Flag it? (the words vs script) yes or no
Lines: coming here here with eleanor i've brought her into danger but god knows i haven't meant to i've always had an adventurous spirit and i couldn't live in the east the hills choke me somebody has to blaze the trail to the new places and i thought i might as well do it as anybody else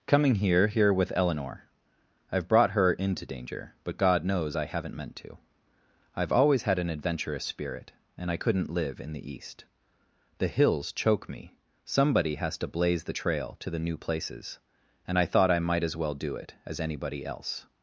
no